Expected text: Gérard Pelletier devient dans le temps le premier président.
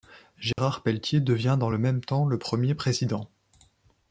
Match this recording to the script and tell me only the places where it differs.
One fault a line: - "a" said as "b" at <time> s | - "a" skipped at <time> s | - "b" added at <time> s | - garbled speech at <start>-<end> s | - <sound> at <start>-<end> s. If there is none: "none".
- dropout at 0.5-0.6 s
- "même" added at 1.8 s